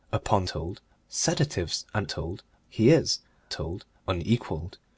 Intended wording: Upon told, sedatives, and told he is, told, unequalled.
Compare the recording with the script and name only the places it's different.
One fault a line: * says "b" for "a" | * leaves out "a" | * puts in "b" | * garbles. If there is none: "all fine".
all fine